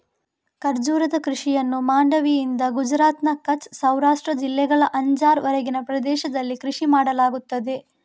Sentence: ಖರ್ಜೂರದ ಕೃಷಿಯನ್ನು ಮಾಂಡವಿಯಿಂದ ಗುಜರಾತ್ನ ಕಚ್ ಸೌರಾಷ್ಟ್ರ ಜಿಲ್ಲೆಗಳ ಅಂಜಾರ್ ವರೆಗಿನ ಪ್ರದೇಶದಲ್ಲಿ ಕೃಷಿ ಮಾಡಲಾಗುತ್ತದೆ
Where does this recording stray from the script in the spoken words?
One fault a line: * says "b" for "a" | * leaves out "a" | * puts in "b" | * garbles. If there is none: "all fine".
all fine